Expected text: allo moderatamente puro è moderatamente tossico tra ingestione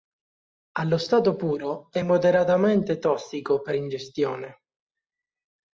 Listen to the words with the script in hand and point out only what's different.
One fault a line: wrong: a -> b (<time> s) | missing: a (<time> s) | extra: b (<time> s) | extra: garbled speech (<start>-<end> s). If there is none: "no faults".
wrong: moderatamente -> stato (1.0 s)
wrong: tra -> per (3.6 s)